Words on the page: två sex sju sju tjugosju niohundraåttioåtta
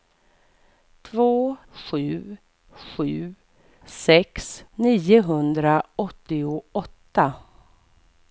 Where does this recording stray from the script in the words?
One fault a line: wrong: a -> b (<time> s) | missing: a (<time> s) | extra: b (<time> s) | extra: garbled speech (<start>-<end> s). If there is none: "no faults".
missing: sex (1.6 s)
wrong: tjugosju -> sex (3.8 s)